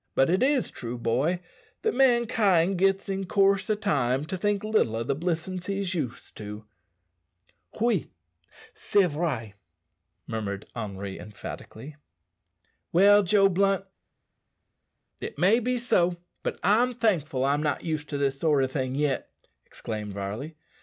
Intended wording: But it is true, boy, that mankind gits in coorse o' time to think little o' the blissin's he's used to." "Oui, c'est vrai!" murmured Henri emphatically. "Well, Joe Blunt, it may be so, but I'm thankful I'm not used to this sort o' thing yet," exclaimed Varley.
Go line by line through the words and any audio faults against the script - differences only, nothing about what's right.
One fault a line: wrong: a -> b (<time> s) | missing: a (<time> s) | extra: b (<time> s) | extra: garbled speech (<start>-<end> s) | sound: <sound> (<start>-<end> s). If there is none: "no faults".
no faults